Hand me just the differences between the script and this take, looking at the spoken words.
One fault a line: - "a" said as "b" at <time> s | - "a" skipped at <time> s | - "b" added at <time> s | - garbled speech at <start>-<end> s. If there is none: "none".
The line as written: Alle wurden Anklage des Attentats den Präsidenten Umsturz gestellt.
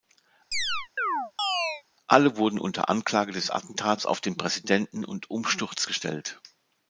- "unter" added at 2.6 s
- "auf" added at 4.0 s
- "und" added at 5.1 s